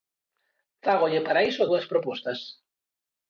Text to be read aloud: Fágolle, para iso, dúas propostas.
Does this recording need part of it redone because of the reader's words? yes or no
no